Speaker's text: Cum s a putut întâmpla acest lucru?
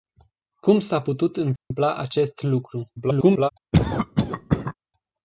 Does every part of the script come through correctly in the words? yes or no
no